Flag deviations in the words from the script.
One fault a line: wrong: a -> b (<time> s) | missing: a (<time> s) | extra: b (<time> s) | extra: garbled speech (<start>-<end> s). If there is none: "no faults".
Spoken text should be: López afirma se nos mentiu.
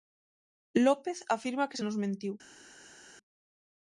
extra: que (1.7 s)